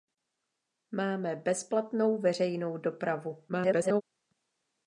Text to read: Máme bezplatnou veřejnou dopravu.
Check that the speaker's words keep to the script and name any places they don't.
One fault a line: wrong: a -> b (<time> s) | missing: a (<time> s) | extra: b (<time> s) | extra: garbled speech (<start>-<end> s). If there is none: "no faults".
extra: garbled speech (3.5-4.0 s)